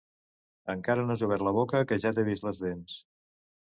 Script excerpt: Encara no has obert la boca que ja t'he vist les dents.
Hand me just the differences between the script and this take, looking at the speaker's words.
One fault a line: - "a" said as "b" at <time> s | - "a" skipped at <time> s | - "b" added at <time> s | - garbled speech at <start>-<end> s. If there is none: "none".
none